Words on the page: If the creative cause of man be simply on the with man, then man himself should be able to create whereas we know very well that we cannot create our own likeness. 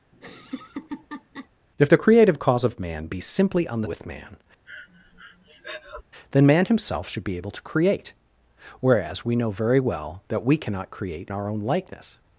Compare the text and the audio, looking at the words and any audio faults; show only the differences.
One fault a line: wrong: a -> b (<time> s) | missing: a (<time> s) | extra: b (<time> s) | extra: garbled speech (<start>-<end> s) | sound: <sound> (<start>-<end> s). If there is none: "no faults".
sound: laugh (0.1-1.5 s)
sound: breath (4.7-6.0 s)